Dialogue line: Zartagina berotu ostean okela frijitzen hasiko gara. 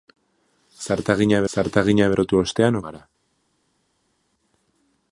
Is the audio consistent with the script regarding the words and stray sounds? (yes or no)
no